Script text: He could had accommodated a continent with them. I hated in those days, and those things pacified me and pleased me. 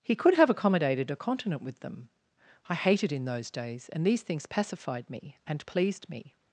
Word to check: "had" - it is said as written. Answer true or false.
false